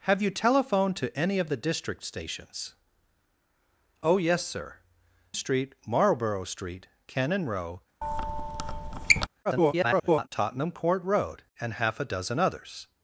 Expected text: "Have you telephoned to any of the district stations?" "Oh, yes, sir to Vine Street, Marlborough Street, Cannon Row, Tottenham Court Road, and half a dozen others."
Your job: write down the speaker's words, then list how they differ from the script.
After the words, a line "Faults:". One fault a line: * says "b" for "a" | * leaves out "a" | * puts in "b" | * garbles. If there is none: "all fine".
"Have you telephoned to any of the district stations?" "Oh, yes, sir Street, Marlborough Street, Cannon Row, [garbled] Tottenham Court Road, and half a dozen others."
Faults:
* leaves out "to Vine"
* garbles